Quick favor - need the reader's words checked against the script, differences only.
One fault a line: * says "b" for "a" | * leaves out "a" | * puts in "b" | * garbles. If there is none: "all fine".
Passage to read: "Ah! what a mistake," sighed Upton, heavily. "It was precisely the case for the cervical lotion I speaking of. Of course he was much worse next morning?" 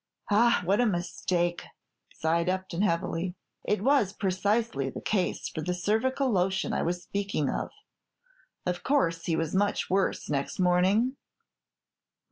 * puts in "was"